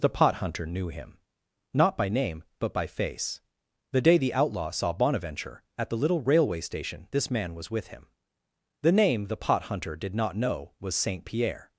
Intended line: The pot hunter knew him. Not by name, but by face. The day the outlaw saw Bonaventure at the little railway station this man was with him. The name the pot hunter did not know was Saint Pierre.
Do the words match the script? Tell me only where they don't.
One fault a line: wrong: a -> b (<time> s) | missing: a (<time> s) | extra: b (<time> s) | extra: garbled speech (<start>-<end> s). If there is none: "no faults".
no faults